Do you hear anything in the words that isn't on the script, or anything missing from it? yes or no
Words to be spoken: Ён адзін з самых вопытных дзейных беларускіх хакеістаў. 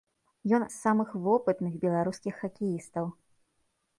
yes